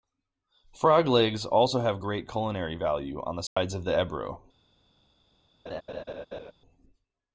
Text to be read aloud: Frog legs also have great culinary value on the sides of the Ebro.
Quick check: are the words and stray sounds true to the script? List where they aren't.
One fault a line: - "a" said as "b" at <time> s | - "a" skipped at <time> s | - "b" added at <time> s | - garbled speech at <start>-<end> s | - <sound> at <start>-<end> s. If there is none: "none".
- dropout at 3.5-3.6 s
- laugh at 5.7-6.5 s